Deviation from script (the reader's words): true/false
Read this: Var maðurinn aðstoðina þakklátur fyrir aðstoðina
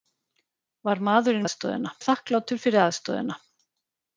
false